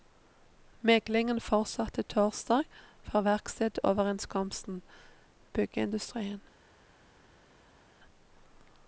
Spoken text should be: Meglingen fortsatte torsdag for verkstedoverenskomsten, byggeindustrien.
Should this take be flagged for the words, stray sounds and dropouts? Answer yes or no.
no